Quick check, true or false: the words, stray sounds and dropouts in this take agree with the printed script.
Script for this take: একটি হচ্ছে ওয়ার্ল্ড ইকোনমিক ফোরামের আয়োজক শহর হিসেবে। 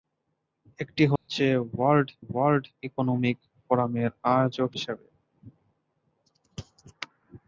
false